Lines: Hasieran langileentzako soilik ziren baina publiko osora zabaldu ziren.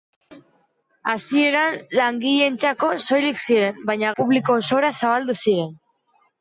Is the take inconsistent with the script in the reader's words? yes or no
no